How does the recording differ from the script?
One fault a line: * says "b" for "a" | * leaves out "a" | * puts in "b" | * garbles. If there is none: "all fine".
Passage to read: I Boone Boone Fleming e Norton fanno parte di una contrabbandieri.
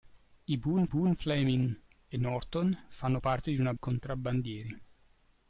all fine